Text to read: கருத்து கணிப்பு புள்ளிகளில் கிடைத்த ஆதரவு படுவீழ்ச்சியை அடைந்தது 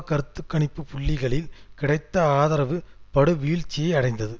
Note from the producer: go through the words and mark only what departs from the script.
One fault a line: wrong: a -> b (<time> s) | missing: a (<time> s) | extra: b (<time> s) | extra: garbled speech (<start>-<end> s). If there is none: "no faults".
no faults